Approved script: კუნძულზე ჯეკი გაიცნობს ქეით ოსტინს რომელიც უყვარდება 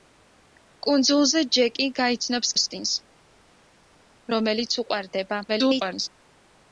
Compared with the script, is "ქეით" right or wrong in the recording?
wrong